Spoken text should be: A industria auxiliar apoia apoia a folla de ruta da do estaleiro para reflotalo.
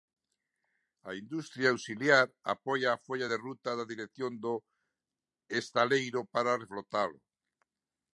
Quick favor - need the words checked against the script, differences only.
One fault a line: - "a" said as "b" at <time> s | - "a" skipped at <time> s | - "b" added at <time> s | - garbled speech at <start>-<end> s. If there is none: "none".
- "apoia" skipped at 2.9 s
- "dirección" added at 3.9 s